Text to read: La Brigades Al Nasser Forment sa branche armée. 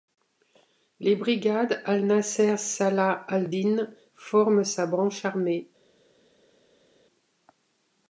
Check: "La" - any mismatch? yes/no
yes